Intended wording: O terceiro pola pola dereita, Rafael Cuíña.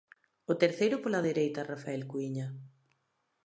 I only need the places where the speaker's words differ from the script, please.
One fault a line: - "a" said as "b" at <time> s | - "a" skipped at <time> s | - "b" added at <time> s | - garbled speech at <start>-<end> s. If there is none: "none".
- "pola" skipped at 1.2 s